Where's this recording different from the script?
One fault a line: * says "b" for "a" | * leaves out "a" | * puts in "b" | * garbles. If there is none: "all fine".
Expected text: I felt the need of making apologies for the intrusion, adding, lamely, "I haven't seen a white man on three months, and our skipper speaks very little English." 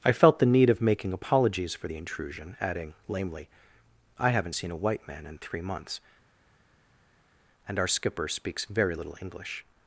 * says "in" for "on"